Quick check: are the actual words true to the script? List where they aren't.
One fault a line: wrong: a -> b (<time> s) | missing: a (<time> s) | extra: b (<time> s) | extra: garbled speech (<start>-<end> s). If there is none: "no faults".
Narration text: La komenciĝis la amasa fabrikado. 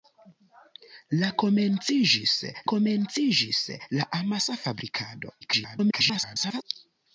extra: komenciĝis (2.7 s)
extra: garbled speech (5.4-6.6 s)